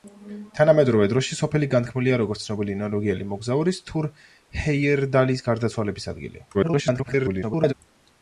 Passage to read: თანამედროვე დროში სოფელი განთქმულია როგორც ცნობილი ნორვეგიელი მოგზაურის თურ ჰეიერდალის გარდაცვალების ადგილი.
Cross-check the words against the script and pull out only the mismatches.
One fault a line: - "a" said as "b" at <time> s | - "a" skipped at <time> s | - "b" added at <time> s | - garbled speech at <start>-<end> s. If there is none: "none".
- garbled speech at 6.5-7.7 s